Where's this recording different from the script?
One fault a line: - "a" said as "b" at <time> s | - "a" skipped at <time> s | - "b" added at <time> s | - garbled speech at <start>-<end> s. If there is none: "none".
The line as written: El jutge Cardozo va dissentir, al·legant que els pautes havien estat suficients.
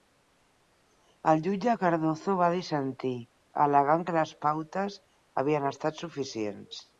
- "els" said as "les" at 4.2 s